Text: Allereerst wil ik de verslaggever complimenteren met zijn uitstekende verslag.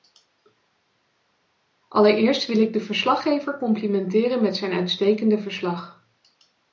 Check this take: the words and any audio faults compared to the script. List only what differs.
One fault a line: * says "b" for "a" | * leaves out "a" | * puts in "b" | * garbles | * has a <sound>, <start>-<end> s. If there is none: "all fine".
all fine